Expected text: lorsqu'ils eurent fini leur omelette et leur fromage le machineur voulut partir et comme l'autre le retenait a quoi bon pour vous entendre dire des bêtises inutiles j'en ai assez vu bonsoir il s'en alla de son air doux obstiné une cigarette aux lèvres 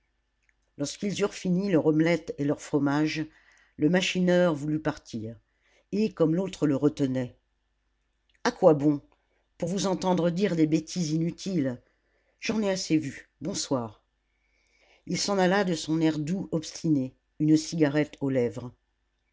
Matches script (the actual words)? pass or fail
pass